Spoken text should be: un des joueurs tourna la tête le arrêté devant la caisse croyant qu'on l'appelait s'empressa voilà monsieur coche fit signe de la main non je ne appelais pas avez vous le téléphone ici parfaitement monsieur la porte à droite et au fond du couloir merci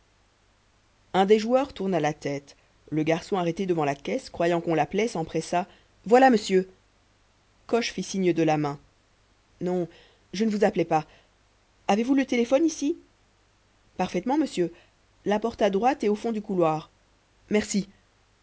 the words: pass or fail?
fail